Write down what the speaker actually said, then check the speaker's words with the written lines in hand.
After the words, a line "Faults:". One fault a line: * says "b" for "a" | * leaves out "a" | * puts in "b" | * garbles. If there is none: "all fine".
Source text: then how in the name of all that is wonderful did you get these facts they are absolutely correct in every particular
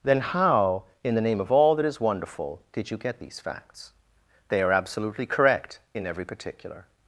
then how in the name of all that is wonderful did you get these facts they are absolutely correct in every particular
Faults:
all fine